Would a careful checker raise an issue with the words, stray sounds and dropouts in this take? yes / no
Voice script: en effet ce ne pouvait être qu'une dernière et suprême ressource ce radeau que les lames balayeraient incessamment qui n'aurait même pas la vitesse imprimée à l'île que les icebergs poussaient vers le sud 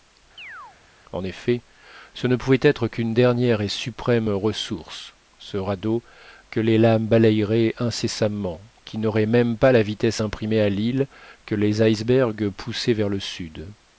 yes